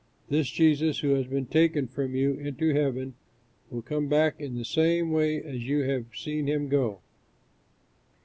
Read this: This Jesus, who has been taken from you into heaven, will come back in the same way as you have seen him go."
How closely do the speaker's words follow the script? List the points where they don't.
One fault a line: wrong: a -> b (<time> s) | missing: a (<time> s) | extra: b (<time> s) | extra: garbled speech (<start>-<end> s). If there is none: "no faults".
no faults